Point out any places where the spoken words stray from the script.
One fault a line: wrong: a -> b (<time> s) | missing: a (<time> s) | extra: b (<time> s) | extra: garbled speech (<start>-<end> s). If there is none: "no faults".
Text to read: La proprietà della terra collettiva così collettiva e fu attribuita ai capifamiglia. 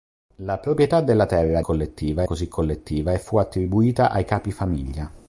no faults